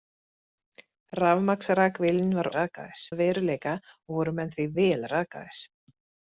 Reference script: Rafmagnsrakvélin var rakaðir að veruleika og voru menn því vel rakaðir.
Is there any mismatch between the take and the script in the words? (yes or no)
no